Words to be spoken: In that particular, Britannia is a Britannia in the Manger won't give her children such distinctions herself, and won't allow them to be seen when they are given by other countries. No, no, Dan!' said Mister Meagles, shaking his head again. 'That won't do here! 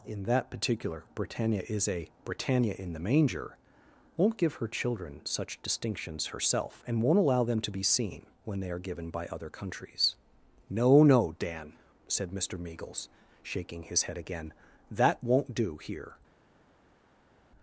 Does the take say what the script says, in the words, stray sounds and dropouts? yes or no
yes